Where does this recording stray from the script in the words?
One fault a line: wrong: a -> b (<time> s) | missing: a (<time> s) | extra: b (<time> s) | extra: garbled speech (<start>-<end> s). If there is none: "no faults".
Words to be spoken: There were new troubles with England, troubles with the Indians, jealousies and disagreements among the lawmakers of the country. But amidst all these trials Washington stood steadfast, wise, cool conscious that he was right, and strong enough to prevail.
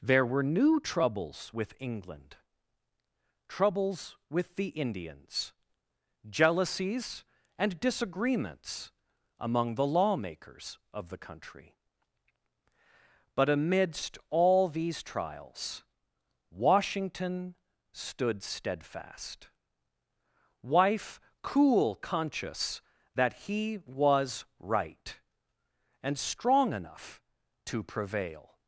wrong: wise -> wife (20.6 s)